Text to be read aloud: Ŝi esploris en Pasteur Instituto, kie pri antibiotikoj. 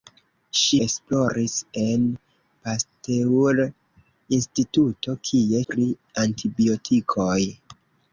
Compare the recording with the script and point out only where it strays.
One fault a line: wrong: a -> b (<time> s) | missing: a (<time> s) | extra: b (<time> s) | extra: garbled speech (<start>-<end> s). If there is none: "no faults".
no faults